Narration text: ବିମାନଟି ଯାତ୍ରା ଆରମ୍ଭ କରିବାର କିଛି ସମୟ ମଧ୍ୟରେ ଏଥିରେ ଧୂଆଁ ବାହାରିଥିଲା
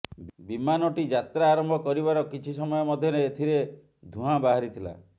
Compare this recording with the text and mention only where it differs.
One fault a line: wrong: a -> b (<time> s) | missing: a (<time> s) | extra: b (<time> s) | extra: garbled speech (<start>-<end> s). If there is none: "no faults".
no faults